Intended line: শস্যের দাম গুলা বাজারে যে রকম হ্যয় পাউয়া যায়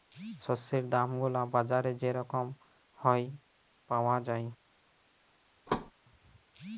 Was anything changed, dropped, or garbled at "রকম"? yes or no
no